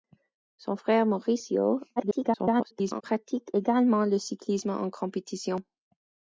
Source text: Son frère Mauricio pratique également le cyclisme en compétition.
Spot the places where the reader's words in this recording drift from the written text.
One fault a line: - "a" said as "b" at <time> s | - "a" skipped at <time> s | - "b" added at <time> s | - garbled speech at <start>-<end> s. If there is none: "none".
- garbled speech at 2.0-3.0 s